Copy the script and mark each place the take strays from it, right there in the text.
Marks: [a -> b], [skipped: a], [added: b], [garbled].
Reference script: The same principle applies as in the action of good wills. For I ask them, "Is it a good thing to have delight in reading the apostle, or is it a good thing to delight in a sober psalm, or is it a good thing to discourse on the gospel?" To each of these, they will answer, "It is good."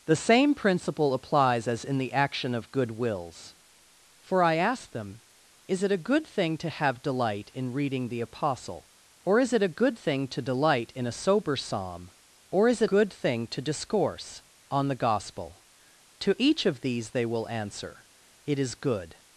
The same principle applies as in the action of good wills. For I ask them, "Is it a good thing to have delight in reading the apostle, or is it a good thing to delight in a sober psalm, or is it [skipped: a] good thing to discourse on the gospel?" To each of these, they will answer, "It is good."